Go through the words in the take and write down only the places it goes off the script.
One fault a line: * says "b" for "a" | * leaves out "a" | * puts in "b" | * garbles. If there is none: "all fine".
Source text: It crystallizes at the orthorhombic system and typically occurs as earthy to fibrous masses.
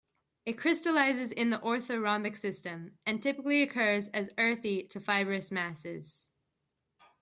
* says "in" for "at"